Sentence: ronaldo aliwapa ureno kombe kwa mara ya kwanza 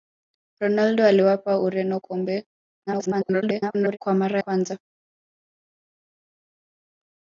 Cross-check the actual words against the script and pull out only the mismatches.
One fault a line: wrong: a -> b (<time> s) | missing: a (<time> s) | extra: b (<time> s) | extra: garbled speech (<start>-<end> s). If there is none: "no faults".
extra: garbled speech (2.9-4.0 s)
missing: ya (4.4 s)